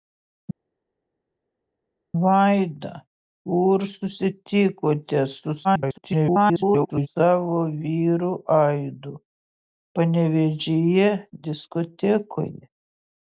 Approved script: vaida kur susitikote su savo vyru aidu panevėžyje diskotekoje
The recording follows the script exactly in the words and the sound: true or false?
false